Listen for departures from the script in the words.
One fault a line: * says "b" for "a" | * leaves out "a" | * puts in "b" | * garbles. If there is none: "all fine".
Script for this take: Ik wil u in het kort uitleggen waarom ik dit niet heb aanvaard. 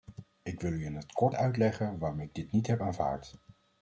all fine